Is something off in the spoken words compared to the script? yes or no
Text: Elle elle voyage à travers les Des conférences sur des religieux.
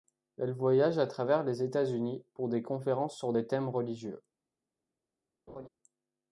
yes